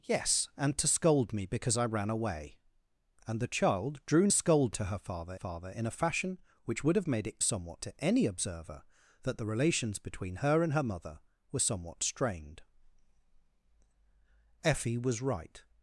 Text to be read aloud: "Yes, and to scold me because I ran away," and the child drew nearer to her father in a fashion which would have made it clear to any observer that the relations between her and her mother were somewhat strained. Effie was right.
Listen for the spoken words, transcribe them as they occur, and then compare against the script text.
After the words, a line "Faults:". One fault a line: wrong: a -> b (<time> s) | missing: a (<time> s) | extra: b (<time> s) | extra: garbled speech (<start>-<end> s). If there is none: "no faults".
"Yes, and to scold me because I ran away," and the child drew scold to her father father in a fashion which would have made it somewhat to any observer that the relations between her and her mother were somewhat strained. Effie was right.
Faults:
wrong: nearer -> scold (4.3 s)
extra: father (5.3 s)
wrong: clear -> somewhat (7.4 s)